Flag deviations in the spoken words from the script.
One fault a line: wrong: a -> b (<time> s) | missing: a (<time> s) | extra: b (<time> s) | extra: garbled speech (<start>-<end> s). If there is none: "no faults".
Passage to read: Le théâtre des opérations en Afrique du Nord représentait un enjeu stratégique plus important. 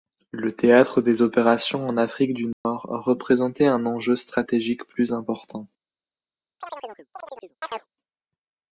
no faults